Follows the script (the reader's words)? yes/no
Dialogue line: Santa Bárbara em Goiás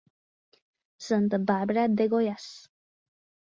no